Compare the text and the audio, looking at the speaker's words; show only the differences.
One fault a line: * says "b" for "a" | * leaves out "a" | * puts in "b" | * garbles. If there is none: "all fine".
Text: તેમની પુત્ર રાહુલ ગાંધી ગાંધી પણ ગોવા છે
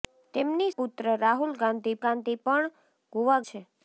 all fine